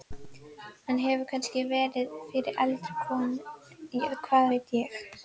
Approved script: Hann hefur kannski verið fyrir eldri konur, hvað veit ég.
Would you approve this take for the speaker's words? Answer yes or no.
yes